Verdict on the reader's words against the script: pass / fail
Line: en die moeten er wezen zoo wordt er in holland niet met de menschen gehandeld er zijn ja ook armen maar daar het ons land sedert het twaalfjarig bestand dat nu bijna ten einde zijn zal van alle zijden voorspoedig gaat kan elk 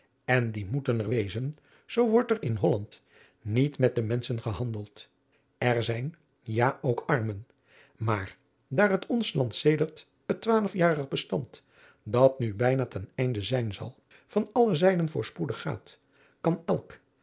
pass